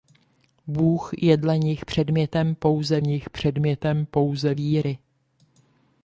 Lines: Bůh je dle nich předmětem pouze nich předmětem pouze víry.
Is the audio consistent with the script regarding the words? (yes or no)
yes